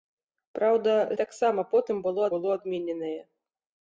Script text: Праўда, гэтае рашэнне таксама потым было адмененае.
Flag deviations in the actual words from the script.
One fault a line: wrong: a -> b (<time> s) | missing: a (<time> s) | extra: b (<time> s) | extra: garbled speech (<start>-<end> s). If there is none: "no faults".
missing: гэтае рашэнне (0.9 s)
extra: было (2.4 s)